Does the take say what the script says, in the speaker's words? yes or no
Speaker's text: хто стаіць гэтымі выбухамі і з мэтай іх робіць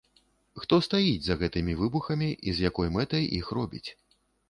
no